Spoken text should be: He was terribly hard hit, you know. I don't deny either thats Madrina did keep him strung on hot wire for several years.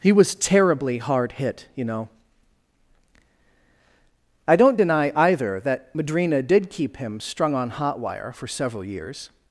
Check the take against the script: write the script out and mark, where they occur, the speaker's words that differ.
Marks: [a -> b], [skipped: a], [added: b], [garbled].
He was terribly hard hit, you know. I don't deny either [thats -> that] Madrina did keep him strung on hot wire for several years.